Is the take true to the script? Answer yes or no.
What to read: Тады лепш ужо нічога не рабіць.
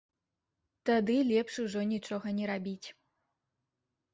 yes